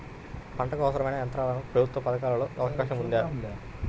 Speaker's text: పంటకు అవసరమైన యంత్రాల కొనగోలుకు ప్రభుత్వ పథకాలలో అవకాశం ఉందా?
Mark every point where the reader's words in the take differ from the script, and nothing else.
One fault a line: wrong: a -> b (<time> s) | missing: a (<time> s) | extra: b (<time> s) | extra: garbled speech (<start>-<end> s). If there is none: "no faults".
missing: కొనగోలుకు (1.6 s)